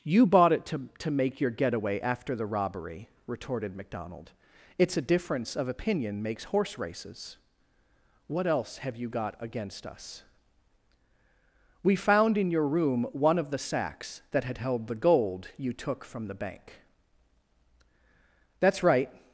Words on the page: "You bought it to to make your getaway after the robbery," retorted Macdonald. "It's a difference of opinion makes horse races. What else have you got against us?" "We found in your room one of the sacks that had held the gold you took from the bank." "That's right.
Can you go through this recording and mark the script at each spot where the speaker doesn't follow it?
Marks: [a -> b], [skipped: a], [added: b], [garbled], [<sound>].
"You bought it to to make your getaway after the robbery," retorted Macdonald. "It's a difference of opinion makes horse races. What else have you got against us?" "We found in your room one of the sacks that had held the gold you took from the bank." "That's right.